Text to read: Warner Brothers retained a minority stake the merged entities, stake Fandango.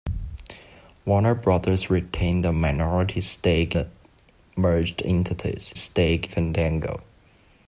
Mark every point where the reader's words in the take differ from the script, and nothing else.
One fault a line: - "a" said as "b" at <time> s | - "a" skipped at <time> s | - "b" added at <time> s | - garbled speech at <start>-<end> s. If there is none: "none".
none